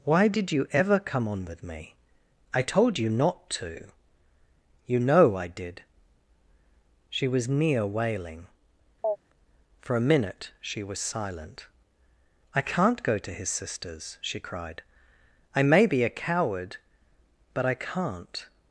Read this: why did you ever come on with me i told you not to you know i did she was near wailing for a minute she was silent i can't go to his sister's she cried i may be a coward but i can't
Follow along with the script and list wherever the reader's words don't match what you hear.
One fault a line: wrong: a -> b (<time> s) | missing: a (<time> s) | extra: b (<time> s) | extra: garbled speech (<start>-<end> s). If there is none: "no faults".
no faults